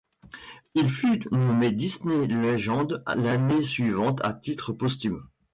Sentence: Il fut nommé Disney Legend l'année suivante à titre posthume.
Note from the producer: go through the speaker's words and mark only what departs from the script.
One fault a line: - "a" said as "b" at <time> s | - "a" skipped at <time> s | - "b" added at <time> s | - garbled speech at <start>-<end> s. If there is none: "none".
none